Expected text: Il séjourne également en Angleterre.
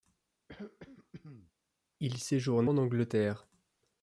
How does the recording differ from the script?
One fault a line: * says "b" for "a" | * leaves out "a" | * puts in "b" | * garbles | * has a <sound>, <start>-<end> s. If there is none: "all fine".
* has a throat clearing, 0.5-1.5 s
* leaves out "également"